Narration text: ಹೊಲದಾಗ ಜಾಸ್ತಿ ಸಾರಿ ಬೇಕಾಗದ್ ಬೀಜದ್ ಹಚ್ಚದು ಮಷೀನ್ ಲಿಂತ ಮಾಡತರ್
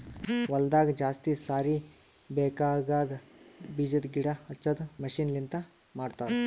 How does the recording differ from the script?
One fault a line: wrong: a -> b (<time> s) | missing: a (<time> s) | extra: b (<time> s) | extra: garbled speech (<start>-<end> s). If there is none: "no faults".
extra: ಗಿಡ (4.1 s)